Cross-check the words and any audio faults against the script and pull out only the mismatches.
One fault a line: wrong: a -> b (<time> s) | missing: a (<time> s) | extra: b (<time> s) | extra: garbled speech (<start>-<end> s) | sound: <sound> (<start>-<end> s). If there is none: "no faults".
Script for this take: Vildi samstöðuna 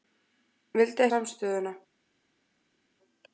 no faults